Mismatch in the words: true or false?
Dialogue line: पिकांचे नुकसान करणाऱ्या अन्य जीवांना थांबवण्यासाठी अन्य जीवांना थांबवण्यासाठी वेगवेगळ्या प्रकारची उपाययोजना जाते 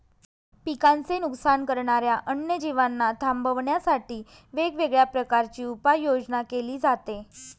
true